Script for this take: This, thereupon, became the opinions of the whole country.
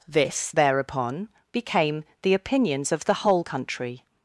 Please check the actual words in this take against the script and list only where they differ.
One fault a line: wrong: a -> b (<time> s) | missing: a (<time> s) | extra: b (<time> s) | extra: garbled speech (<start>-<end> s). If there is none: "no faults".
no faults